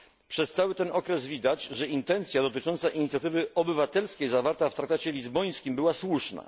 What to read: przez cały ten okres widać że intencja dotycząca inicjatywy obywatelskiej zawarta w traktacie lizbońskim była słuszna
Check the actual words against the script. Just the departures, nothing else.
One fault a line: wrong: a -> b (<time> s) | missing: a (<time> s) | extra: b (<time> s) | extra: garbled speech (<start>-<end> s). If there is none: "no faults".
no faults